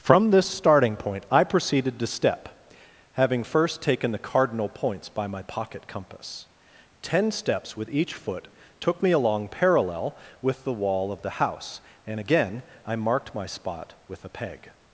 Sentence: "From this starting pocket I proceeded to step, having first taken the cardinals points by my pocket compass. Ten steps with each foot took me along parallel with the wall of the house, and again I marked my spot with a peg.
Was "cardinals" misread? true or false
true